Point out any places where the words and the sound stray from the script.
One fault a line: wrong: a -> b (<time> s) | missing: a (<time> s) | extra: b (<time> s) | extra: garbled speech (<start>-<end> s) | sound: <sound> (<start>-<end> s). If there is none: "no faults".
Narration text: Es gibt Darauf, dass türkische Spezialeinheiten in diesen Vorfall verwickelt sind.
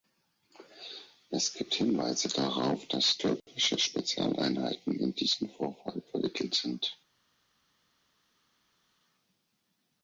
extra: Hinweise (1.8 s)